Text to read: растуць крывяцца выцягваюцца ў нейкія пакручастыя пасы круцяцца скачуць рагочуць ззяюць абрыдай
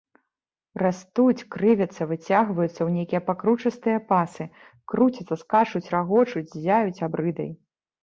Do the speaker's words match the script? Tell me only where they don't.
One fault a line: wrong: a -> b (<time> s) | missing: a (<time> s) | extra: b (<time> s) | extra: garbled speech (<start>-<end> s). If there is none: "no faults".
no faults